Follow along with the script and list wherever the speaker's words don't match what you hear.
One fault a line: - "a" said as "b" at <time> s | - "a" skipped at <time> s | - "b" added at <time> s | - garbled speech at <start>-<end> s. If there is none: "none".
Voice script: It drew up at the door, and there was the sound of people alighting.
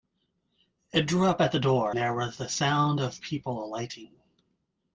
- "and" skipped at 1.9 s